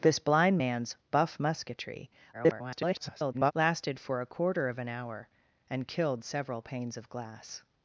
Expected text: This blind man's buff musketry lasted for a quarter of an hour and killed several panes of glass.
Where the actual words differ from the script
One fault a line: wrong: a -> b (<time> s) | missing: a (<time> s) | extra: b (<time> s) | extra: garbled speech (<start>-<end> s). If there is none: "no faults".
extra: garbled speech (2.3-3.5 s)